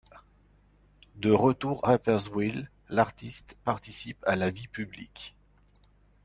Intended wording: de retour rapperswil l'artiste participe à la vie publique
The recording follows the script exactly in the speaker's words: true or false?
true